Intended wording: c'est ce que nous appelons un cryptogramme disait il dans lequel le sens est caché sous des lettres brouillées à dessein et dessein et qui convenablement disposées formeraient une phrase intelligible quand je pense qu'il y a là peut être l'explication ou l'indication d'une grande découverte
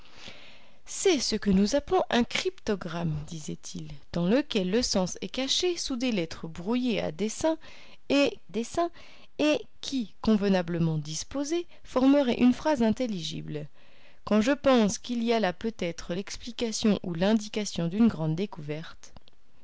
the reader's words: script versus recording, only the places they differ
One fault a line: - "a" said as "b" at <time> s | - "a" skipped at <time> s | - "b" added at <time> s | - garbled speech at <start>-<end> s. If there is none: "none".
none